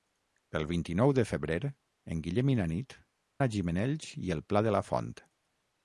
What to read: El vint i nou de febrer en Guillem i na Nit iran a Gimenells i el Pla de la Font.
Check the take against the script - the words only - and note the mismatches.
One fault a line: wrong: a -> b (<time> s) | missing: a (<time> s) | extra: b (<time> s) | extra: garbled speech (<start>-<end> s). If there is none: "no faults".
missing: iran (3.0 s)